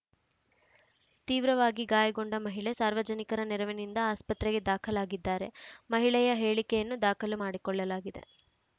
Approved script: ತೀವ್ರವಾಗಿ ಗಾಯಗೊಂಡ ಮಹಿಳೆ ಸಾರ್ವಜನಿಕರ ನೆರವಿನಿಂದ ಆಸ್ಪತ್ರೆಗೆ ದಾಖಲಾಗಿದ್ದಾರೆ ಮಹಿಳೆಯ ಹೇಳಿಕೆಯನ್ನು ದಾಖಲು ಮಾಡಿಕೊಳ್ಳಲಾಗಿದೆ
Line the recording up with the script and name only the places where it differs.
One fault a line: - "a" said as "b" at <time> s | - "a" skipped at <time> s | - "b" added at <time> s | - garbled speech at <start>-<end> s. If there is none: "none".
none